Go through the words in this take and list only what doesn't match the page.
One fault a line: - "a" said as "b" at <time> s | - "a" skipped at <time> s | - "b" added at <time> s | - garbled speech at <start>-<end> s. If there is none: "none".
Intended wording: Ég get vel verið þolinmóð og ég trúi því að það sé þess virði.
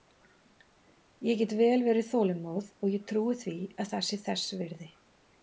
none